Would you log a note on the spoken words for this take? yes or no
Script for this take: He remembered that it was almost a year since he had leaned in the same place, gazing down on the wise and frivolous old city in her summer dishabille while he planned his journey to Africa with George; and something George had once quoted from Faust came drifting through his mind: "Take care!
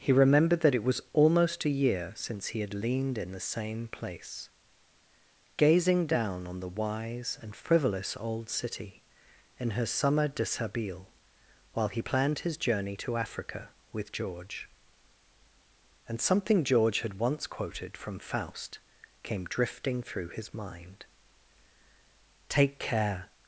no